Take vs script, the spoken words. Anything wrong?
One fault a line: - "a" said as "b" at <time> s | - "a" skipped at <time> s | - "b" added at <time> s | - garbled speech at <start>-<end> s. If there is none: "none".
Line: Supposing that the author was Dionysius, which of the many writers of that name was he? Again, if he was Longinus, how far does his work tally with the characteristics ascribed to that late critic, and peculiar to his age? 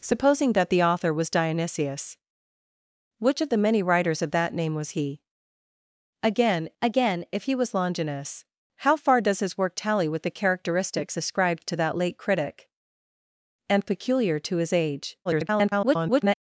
- "again" added at 6.8 s
- garbled speech at 15.3-16.4 s